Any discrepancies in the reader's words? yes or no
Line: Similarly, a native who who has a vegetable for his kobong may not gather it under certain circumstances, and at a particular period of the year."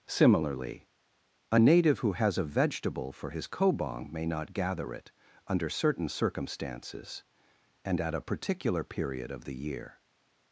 yes